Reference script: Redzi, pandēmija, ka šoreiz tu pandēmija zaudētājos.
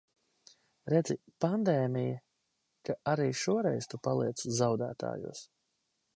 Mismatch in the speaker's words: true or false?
true